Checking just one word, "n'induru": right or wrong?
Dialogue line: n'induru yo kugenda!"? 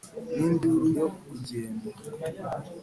right